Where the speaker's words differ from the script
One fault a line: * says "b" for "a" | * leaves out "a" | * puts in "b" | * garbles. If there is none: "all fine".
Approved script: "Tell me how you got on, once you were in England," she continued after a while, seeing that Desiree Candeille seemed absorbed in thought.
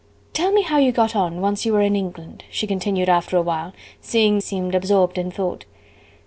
* leaves out "that Desiree Candeille"